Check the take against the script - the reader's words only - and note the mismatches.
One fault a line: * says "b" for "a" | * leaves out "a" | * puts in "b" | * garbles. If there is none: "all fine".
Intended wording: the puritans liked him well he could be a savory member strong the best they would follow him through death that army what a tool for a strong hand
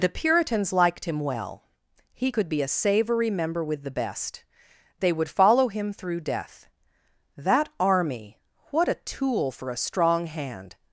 * says "with" for "strong"